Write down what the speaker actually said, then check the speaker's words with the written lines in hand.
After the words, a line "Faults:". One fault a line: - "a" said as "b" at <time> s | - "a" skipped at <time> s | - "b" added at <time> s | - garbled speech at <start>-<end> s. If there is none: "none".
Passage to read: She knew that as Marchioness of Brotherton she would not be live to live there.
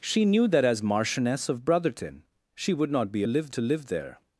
She knew that as Marchioness of Brotherton she would not be live to live there.
Faults:
none